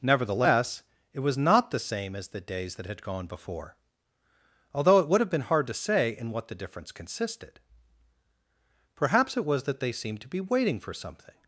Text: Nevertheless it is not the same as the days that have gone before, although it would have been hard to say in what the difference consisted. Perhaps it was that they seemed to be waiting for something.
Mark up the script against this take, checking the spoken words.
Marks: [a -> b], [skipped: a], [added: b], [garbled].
Nevertheless it [is -> was] not the same as the days that [have -> had] gone before, although it would have been hard to say in what the difference consisted. Perhaps it was that they seemed to be waiting for something.